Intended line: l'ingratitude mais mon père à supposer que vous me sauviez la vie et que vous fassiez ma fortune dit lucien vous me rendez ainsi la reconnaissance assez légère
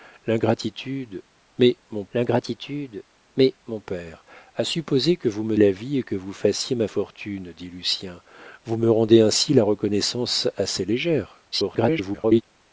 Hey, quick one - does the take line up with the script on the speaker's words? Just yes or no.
no